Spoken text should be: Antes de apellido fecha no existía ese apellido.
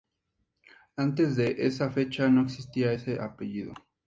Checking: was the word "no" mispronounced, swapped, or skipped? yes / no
no